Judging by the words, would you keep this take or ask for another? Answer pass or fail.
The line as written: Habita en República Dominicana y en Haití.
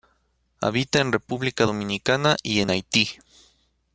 pass